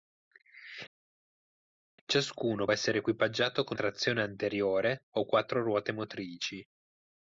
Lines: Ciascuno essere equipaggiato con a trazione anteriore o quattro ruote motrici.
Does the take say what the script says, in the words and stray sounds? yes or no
yes